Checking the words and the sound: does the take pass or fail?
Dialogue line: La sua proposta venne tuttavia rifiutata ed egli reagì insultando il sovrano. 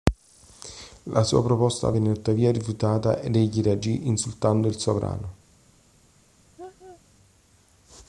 fail